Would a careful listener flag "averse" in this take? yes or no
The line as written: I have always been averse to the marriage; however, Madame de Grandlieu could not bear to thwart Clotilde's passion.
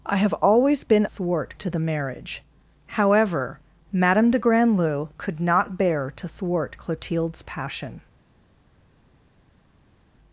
yes